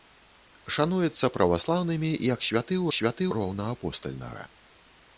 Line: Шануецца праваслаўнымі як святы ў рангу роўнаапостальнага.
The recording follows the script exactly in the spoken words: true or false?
false